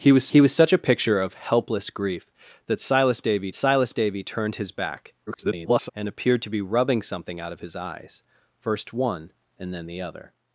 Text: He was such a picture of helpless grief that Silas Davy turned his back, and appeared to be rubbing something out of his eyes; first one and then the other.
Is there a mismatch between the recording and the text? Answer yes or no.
yes